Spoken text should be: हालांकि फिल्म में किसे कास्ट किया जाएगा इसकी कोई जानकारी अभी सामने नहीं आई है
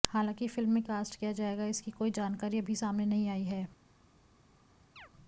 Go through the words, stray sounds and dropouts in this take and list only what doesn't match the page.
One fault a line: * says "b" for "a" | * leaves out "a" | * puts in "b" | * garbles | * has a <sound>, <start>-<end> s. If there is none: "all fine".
* leaves out "किसे"
* has a chirp, 5.0-5.1 s